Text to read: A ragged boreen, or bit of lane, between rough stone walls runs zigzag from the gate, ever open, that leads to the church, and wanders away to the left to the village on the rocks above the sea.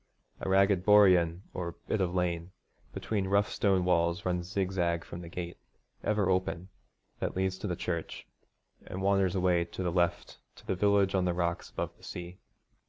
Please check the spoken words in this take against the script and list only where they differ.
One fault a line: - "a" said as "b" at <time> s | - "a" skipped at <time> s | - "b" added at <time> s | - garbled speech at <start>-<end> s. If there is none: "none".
none